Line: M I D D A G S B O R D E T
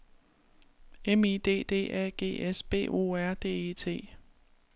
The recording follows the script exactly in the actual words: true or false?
true